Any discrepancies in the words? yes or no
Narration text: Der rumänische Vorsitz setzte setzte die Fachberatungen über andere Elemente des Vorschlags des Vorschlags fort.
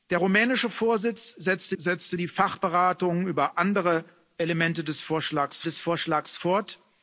no